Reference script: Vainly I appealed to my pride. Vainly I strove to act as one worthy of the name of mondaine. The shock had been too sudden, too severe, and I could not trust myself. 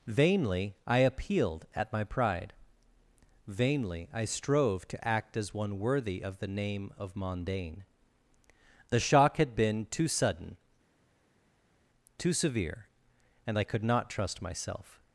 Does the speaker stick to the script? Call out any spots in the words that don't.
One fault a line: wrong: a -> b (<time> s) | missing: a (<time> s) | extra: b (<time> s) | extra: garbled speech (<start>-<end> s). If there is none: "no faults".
wrong: to -> at (1.8 s)